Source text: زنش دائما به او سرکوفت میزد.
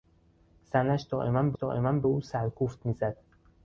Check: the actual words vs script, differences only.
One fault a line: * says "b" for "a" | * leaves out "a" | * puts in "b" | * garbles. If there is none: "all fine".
* puts in "دائما به"